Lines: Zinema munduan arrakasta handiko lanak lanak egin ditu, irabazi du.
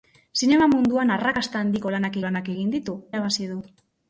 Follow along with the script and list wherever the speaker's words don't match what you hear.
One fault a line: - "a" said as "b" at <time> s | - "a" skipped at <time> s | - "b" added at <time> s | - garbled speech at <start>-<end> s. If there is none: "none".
none